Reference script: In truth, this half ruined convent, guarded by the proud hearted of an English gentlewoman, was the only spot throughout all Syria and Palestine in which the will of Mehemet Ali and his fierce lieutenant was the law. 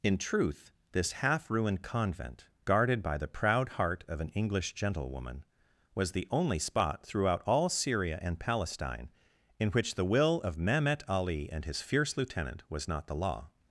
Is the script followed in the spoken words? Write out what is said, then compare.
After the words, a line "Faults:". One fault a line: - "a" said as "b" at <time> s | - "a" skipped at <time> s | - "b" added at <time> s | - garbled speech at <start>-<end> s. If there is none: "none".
In truth, this half ruined convent, guarded by the proud heart of an English gentlewoman, was the only spot throughout all Syria and Palestine in which the will of Mehemet Ali and his fierce lieutenant was not the law.
Faults:
- "hearted" said as "heart" at 3.7 s
- "not" added at 12.9 s